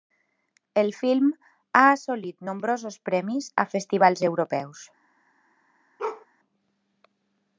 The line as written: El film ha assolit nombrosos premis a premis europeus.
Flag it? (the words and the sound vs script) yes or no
yes